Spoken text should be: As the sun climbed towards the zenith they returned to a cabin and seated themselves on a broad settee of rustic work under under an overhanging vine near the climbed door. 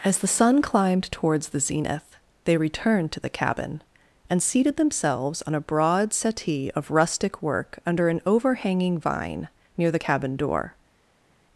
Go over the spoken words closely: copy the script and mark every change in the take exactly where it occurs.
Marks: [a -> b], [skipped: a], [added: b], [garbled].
As the sun climbed towards the zenith they returned to [a -> the] cabin and seated themselves on a broad settee of rustic work under [skipped: under] an overhanging vine near the [climbed -> cabin] door.